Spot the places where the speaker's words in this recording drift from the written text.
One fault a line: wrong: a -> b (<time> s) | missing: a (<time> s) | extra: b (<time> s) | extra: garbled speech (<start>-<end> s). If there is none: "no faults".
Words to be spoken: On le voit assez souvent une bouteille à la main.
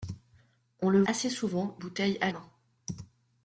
missing: voit (1.0 s)
missing: une (1.8 s)
missing: la (2.3 s)